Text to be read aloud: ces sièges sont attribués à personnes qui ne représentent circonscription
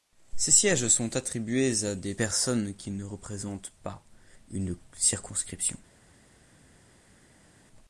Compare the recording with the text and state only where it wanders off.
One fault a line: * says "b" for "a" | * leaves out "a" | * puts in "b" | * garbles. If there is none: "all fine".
* puts in "des"
* puts in "pas une"